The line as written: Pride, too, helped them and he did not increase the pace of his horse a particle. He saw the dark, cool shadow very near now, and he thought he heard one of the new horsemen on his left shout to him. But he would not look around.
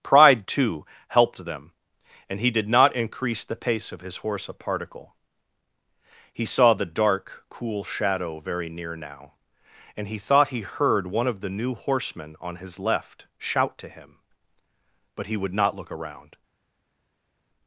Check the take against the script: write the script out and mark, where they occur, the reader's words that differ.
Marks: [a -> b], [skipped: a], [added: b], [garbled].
Pride, too, helped them and he did not increase the pace of his horse a particle. He saw the dark, cool shadow very near now, and he thought he heard one of the new horsemen on his left shout to him. But he would not look around.